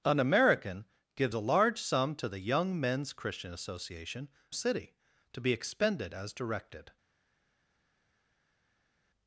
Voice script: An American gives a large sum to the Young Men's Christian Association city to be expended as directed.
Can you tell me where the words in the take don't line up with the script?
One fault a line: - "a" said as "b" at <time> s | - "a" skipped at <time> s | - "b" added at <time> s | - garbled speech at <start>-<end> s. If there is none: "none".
none